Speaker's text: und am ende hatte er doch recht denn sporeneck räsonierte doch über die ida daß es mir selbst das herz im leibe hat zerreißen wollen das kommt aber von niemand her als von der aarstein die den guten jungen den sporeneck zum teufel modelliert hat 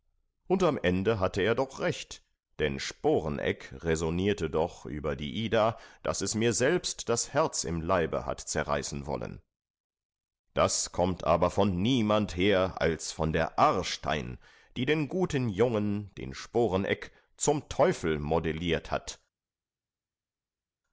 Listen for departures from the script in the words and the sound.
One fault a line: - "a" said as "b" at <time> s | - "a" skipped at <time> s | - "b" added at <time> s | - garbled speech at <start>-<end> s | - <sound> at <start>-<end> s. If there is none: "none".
none